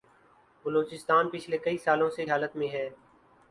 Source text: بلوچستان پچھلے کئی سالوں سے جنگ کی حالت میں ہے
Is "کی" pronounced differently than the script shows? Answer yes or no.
yes